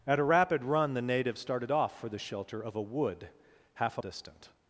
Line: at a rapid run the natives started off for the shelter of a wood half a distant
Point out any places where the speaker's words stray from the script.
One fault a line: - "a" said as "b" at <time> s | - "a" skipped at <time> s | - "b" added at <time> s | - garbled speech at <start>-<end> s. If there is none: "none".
none